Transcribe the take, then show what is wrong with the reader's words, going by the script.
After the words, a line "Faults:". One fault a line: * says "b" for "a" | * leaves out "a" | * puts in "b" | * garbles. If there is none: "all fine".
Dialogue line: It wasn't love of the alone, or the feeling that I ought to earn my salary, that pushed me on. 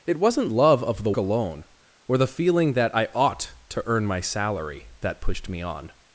It wasn't love of the alone, or the feeling that I ought to earn my salary, that pushed me on.
Faults:
all fine